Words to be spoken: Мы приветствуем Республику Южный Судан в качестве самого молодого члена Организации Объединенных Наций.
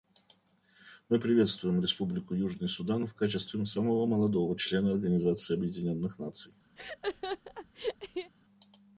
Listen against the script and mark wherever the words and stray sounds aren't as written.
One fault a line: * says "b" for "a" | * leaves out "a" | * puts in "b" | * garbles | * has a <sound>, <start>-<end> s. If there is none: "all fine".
* has a laugh, 6.8-8.3 s